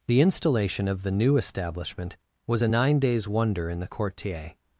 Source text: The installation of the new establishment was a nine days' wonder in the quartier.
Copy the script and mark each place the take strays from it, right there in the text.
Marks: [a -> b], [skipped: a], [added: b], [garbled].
The installation of the new establishment was a nine days' wonder in the quartier.